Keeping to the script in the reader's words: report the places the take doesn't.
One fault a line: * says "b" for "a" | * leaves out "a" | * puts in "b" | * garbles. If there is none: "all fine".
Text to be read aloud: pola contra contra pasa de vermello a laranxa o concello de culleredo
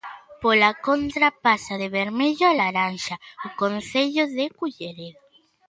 * leaves out "contra"